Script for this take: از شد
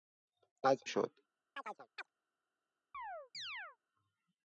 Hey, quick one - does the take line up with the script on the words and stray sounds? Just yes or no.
no